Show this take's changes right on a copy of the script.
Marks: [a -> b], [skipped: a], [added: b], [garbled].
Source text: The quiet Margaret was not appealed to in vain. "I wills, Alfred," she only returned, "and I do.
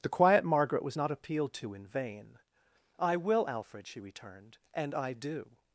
The quiet Margaret was not appealed to in vain. "I [wills, -> will] Alfred," she [skipped: only] returned, "and I do.